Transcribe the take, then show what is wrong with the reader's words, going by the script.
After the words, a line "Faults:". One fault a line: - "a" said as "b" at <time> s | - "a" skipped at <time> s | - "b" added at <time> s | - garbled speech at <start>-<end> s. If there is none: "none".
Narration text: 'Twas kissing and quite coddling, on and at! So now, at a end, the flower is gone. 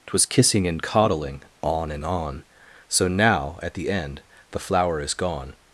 'Twas kissing and coddling, on and on! So now, at the end, the flower is gone.
Faults:
- "quite" skipped at 0.8 s
- "at" said as "on" at 2.0 s
- "a" said as "the" at 3.7 s